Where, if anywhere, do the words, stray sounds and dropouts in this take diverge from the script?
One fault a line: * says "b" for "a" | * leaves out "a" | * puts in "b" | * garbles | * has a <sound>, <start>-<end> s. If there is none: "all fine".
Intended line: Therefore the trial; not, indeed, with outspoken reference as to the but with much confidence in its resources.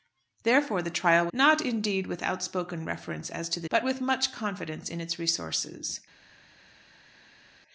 all fine